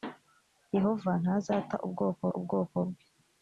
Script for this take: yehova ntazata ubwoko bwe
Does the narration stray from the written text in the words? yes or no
yes